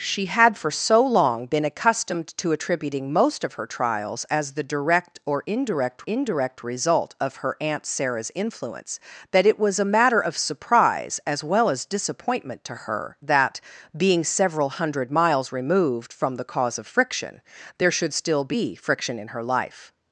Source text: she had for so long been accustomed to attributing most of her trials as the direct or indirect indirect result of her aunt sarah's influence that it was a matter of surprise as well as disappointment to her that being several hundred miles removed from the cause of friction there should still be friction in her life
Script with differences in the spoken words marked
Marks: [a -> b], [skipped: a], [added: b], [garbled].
she had for so long been accustomed to attributing most of her trials as the direct or indirect indirect result of her aunt sarah's influence that it was a matter of surprise as well as disappointment to her that being several hundred miles removed from the cause of friction there should still be friction in her life